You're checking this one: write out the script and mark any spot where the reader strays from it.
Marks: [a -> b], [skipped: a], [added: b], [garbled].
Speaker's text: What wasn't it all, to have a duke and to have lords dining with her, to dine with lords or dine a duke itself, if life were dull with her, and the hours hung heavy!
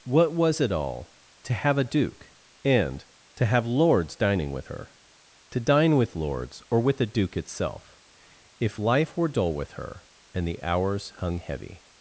What [wasn't -> was] it all, to have a duke and to have lords dining with her, to dine with lords or [dine -> with] a duke itself, if life were dull with her, and the hours hung heavy!